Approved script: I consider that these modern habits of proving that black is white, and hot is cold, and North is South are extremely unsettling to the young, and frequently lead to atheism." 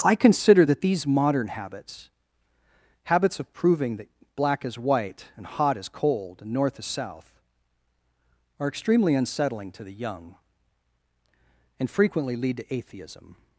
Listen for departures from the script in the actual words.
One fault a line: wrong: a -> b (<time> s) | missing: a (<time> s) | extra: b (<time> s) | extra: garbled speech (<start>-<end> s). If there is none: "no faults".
extra: habits (3.0 s)